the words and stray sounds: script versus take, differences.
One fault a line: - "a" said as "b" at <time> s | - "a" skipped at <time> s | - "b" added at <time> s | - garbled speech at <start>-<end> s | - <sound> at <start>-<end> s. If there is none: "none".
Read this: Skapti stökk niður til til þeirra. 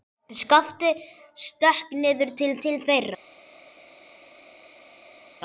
none